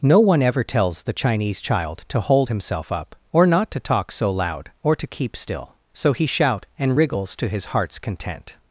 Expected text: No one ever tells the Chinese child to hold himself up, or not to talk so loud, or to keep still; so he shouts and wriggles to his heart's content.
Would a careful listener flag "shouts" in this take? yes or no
yes